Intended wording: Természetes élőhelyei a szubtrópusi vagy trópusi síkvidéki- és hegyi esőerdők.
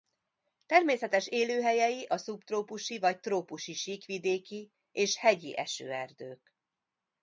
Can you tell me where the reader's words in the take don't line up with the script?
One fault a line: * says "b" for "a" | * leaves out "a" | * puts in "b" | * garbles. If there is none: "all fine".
all fine